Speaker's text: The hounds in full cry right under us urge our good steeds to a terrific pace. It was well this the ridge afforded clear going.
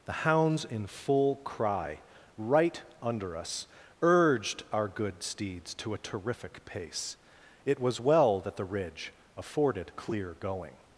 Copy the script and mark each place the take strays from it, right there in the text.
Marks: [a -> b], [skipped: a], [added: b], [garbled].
The hounds in full cry right under us [urge -> urged] our good steeds to a terrific pace. It was well [this -> that] the ridge afforded clear going.